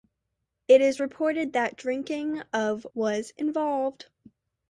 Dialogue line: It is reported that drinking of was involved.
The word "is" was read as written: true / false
true